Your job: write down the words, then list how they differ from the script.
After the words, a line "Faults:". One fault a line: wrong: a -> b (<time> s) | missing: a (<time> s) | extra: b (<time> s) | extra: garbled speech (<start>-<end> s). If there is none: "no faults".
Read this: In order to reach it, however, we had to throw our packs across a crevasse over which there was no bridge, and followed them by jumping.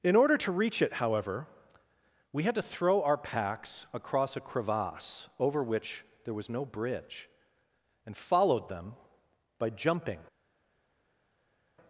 In order to reach it, however, we had to throw our packs across a crevasse over which there was no bridge, and followed them by jumping.
Faults:
no faults